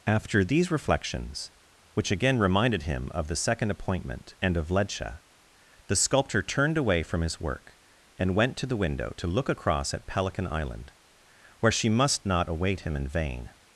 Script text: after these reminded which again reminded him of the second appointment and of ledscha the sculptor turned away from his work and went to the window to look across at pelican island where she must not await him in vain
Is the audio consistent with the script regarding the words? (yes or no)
no